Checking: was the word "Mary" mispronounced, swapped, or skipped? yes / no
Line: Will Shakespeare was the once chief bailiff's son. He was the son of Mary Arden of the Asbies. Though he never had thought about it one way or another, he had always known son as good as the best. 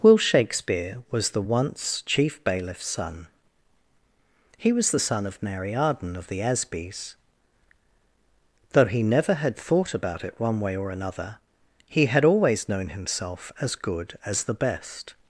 no